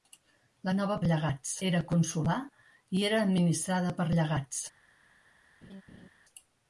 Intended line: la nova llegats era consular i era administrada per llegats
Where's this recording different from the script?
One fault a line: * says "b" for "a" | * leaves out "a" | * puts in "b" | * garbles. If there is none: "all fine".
all fine